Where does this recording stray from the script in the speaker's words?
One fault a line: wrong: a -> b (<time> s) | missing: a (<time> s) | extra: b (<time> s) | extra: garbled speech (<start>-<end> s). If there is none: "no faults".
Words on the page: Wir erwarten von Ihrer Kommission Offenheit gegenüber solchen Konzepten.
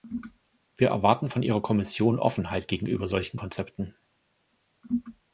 no faults